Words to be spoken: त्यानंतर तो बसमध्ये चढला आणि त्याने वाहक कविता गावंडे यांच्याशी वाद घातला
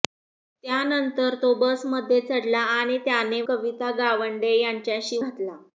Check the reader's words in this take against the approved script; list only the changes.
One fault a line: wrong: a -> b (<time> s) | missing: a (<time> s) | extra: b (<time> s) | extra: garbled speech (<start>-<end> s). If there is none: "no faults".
missing: वाहक (3.4 s)
missing: वाद (5.2 s)